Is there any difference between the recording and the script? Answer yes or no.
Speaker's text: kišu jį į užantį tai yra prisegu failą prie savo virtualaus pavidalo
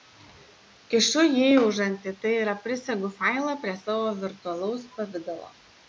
no